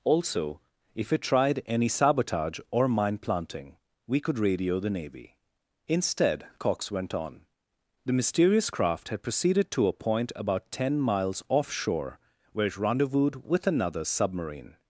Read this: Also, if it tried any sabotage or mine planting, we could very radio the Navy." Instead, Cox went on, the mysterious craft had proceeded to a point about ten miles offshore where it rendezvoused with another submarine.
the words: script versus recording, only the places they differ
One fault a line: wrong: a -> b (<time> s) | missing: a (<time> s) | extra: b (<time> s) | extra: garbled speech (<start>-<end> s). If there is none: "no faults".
missing: very (4.4 s)